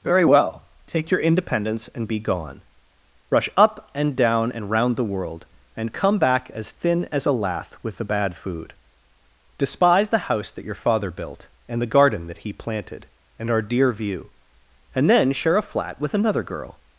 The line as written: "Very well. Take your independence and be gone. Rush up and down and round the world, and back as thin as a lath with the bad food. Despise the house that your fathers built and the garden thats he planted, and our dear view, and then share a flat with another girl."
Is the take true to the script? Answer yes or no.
no